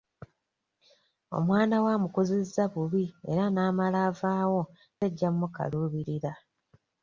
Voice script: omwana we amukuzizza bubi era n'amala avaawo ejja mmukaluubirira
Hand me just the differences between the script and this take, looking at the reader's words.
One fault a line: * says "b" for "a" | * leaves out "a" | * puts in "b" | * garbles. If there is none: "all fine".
all fine